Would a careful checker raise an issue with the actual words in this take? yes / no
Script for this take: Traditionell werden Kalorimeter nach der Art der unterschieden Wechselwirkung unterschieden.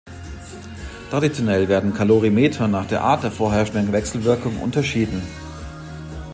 yes